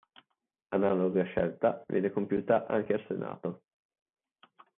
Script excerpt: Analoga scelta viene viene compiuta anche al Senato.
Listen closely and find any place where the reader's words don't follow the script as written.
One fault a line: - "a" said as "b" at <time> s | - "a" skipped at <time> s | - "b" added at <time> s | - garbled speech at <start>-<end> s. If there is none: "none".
- "viene" skipped at 2.1 s